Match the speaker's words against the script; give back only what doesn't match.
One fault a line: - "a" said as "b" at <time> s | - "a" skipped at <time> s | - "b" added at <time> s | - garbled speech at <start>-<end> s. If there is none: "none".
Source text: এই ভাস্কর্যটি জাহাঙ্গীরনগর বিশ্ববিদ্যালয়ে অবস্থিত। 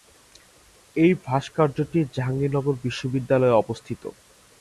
none